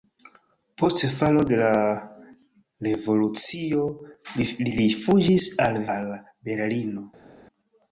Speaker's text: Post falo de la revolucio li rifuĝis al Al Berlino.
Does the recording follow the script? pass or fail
pass